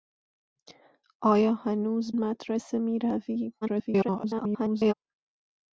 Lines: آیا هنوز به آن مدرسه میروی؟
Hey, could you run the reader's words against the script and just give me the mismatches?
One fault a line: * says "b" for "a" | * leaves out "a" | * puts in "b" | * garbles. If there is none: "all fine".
* leaves out "به آن"
* garbles